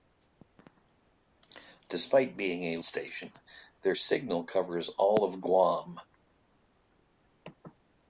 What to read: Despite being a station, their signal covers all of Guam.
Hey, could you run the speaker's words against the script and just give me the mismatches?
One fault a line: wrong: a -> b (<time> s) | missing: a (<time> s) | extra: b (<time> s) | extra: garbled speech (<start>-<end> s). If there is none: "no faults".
no faults